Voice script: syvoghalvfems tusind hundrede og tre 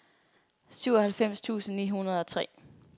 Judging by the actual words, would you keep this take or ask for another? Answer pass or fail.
fail